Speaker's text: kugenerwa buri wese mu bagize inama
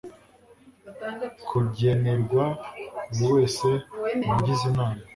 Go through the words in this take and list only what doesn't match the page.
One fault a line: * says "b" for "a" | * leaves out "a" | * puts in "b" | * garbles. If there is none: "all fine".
all fine